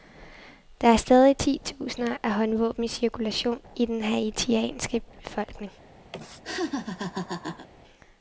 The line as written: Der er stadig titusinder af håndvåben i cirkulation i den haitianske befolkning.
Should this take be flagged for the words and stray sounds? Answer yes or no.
yes